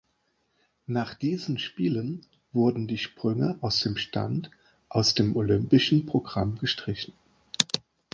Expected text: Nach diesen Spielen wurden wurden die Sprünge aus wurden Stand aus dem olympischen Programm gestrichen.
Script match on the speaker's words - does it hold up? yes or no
no